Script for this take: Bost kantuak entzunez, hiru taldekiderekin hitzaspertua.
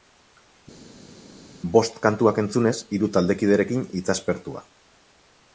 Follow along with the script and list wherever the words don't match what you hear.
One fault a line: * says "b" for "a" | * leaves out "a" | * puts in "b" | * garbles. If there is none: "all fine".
all fine